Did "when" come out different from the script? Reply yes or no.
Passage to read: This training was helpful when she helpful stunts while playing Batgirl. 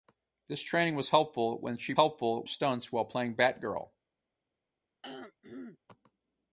no